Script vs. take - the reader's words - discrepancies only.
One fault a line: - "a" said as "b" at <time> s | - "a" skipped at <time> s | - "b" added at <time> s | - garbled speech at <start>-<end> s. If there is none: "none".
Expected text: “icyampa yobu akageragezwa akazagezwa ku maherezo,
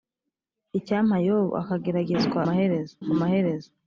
- "akazagezwa" said as "maherezo" at 2.5 s